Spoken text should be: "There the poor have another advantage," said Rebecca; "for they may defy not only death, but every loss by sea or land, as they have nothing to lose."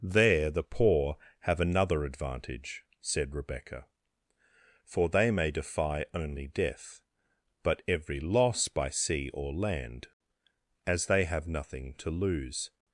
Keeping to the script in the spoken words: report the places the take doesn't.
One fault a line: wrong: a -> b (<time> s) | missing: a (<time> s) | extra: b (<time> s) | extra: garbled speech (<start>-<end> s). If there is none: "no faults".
missing: not (6.0 s)